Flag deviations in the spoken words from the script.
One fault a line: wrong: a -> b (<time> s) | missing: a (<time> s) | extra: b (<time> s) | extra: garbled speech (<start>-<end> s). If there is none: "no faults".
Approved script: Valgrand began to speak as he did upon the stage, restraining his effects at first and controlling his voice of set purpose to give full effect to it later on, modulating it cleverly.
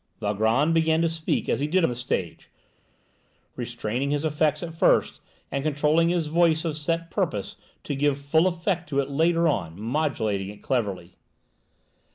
missing: upon (1.8 s)